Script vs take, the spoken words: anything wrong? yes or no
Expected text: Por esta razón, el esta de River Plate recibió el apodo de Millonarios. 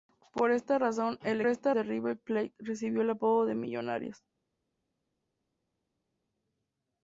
no